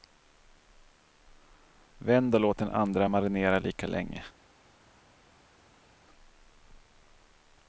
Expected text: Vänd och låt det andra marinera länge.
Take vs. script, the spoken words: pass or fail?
fail